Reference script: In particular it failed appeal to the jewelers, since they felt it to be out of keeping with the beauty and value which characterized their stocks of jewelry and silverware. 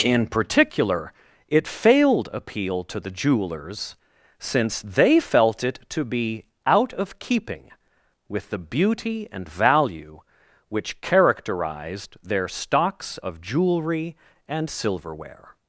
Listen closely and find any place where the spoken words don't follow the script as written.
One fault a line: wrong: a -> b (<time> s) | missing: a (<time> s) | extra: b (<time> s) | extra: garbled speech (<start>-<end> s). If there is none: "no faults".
no faults